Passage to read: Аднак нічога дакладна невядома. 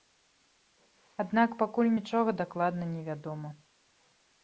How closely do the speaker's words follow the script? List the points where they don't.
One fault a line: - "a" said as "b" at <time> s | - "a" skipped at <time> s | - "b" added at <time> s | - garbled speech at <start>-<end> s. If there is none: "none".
- "пакуль" added at 1.6 s